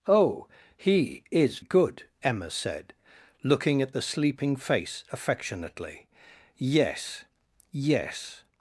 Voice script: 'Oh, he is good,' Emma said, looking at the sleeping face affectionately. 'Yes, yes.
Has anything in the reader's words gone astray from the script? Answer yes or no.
no